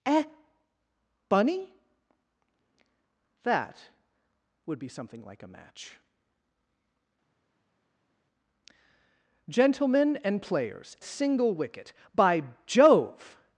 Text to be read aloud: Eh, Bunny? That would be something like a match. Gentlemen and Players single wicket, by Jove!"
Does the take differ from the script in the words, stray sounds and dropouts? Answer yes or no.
no